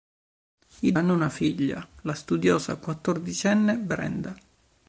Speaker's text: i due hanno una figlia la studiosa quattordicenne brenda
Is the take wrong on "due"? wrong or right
wrong